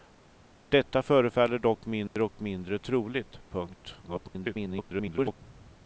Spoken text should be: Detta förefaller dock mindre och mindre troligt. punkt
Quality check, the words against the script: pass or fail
fail